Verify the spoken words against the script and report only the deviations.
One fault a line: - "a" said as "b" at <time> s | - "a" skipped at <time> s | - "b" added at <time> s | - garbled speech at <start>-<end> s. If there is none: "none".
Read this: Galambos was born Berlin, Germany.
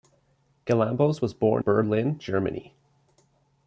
none